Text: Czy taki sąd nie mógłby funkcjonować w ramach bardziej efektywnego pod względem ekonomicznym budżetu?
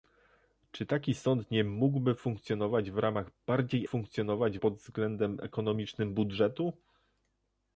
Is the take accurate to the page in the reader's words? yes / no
no